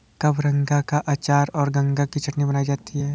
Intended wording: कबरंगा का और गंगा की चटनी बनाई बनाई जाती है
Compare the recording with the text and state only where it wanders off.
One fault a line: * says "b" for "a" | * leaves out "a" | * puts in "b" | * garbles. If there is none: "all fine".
* puts in "अचार"
* leaves out "बनाई"